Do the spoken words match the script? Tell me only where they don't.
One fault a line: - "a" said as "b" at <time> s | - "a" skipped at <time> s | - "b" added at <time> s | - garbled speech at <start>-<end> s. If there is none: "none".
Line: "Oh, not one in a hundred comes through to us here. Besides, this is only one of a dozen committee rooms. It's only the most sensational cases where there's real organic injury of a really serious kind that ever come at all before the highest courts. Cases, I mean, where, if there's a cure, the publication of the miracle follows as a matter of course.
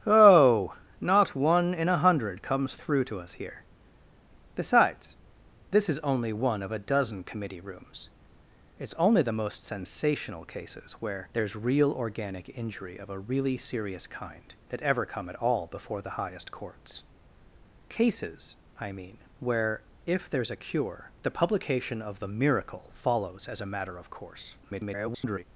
- garbled speech at 24.6-25.4 s